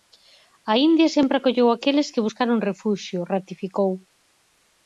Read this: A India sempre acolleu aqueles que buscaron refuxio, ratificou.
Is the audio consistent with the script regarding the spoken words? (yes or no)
yes